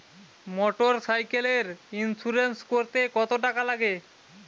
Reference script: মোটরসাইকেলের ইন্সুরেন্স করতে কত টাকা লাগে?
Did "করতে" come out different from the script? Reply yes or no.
no